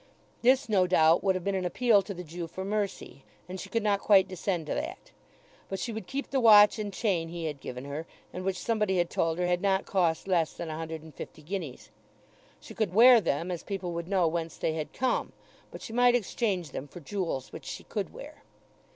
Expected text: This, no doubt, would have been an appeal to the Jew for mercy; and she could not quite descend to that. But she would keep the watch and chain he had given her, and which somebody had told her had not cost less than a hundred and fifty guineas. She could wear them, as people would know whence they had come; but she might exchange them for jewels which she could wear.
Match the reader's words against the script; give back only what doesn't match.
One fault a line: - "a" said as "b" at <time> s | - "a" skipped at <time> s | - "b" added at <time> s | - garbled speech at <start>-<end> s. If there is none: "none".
none